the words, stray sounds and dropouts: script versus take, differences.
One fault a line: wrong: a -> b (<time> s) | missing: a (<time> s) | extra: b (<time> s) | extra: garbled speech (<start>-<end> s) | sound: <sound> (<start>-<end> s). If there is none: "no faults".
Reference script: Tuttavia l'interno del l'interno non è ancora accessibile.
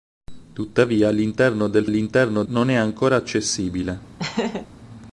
sound: laugh (4.2-4.7 s)